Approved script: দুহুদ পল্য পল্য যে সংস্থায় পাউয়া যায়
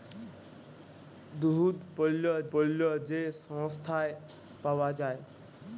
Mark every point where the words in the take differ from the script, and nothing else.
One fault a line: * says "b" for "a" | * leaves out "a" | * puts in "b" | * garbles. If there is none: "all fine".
all fine